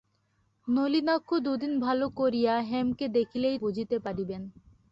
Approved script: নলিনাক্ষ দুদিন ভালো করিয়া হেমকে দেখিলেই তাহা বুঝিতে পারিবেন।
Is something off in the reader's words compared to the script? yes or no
yes